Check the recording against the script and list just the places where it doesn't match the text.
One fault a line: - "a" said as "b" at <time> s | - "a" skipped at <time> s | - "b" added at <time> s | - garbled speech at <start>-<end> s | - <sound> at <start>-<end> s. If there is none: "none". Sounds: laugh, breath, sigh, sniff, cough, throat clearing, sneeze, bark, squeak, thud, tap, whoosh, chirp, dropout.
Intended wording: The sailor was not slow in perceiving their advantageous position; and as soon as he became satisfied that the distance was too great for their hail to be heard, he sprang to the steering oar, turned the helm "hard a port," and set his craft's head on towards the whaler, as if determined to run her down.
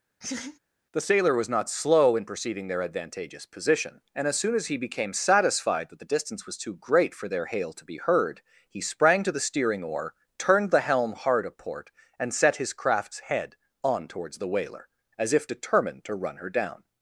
- laugh at 0.2-0.6 s